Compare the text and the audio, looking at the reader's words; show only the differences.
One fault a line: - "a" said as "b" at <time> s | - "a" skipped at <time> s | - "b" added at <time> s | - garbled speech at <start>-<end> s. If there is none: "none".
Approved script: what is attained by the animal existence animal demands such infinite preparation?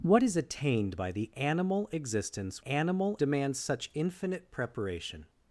none